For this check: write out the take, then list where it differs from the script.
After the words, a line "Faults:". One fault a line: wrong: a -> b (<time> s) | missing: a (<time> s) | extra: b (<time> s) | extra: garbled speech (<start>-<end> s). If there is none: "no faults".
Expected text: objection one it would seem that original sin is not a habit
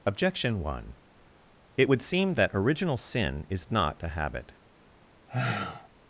objection one it would seem that original sin is not a habit
Faults:
no faults